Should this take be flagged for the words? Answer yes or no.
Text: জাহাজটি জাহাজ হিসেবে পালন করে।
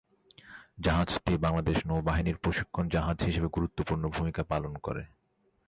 yes